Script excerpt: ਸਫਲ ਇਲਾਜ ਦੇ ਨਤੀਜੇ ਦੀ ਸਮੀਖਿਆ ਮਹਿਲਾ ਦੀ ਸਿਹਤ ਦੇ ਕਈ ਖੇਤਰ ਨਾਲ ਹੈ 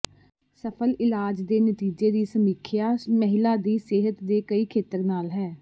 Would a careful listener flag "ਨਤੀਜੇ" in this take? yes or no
no